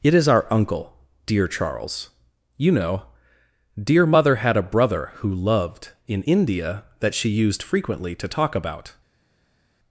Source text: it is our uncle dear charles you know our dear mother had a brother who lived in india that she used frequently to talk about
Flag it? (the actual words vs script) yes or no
yes